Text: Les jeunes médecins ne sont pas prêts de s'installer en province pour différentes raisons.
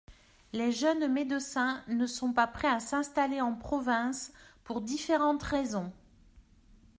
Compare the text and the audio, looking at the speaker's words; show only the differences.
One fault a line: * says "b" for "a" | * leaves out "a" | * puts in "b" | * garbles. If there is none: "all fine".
* says "à" for "de"